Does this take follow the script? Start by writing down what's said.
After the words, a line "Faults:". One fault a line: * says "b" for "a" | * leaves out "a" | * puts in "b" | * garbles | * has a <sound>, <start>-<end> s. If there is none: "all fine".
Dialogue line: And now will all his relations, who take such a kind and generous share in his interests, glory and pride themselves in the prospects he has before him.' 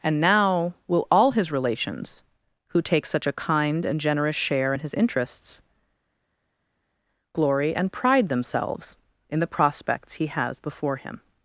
And now will all his relations, who take such a kind and generous share in his interests, glory and pride themselves in the prospects he has before him.'
Faults:
all fine